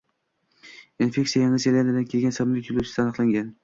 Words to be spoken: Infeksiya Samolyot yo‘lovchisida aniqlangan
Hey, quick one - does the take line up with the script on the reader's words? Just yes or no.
no